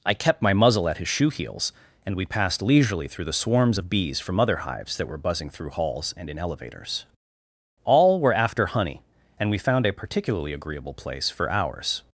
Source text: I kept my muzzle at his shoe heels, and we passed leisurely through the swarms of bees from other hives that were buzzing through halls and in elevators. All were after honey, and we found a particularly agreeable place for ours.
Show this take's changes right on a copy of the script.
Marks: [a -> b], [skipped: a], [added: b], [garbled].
I kept my muzzle at his shoe heels, and we passed leisurely through the swarms of bees from other hives that were buzzing through halls and in elevators. All were after honey, and we found a particularly agreeable place for ours.